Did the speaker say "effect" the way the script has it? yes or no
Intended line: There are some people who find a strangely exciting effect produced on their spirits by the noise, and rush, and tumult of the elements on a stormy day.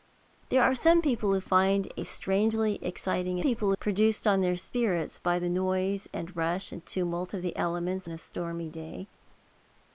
no